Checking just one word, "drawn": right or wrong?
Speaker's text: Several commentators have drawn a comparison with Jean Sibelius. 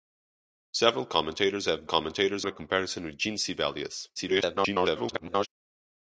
wrong